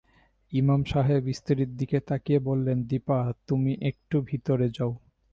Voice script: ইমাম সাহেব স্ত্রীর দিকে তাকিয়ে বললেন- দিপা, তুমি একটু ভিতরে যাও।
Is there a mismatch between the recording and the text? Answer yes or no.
no